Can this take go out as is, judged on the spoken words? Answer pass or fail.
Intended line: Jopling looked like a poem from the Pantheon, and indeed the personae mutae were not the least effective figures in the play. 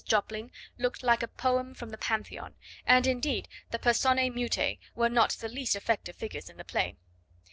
pass